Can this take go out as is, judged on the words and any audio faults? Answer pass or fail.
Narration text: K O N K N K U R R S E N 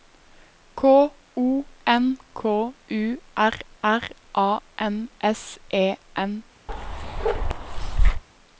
fail